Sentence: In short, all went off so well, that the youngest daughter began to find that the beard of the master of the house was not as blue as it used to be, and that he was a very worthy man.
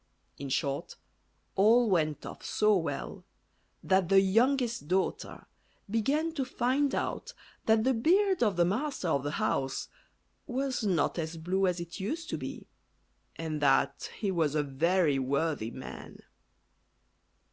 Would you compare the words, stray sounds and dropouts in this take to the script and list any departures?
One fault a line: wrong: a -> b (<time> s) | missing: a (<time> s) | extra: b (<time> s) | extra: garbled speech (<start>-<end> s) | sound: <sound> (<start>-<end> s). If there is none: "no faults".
extra: out (7.0 s)